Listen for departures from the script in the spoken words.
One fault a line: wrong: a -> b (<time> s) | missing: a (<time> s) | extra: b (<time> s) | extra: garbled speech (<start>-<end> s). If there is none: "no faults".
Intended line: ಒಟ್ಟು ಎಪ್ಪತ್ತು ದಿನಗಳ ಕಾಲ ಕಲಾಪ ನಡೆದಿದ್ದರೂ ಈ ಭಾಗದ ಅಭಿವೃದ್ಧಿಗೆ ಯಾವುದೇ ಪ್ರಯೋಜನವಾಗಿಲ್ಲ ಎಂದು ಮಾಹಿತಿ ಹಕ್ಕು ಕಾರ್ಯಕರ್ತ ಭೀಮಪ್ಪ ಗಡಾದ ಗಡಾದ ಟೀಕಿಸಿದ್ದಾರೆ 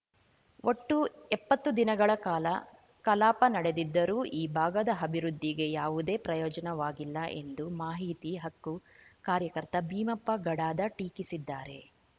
missing: ಗಡಾದ (10.9 s)